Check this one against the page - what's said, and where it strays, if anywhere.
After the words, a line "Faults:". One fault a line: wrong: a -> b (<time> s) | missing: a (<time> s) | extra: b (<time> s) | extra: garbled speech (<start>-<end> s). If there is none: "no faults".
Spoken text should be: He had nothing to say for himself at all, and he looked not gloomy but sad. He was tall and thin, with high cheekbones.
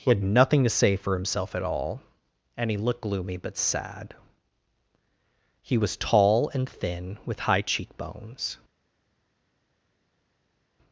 He had nothing to say for himself at all, and he looked gloomy but sad. He was tall and thin, with high cheekbones.
Faults:
missing: not (3.0 s)